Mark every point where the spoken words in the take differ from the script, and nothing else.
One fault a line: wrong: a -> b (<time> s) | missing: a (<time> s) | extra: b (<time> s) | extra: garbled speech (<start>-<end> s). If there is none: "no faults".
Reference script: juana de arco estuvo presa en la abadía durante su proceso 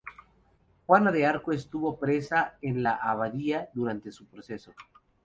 no faults